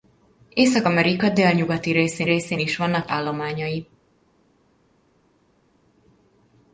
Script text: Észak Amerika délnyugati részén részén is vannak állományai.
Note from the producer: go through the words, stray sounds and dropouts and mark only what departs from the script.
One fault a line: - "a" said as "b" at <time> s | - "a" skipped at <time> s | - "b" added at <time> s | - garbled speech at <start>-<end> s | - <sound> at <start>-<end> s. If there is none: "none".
none